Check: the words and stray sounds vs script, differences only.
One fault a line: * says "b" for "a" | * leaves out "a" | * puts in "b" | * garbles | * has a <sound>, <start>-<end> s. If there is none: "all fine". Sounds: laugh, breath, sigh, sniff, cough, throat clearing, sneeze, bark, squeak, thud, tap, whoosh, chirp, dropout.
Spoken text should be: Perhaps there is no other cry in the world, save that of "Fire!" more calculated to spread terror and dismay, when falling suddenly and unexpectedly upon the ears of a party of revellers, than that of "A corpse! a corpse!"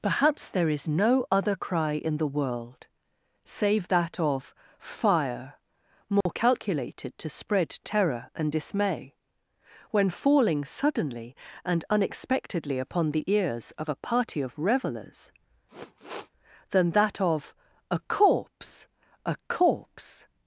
* has a dropout, 6.2-6.3 s
* has a sniff, 15.7-16.3 s